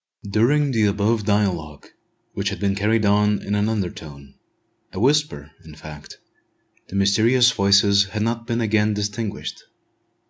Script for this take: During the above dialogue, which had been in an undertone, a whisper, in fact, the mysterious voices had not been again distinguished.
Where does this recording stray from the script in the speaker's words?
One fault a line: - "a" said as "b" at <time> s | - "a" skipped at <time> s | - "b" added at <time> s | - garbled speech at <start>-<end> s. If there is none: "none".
- "carried on" added at 2.7 s